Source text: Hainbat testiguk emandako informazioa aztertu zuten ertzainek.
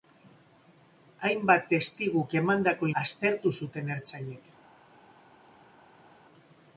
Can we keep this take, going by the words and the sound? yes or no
no